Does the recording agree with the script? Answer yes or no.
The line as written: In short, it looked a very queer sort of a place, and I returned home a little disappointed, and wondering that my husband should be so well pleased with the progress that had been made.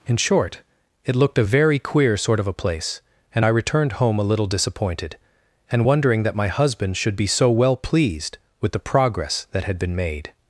yes